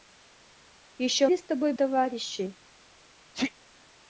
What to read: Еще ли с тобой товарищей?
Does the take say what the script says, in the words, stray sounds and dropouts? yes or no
no